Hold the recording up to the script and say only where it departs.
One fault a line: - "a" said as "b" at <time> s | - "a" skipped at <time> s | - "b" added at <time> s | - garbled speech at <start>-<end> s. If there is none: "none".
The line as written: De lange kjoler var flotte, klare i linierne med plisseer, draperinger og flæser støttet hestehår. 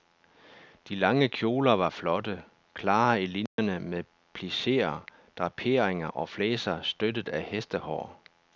- "af" added at 7.3 s